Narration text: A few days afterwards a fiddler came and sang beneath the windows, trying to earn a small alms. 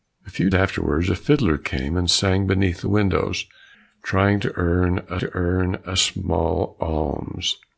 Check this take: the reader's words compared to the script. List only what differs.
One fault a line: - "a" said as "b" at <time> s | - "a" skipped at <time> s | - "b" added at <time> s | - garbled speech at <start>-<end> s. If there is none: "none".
- "days" skipped at 0.5 s
- "to earn a" added at 5.2 s